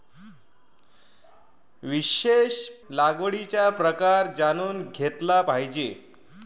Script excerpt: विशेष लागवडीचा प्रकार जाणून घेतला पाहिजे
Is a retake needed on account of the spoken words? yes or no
no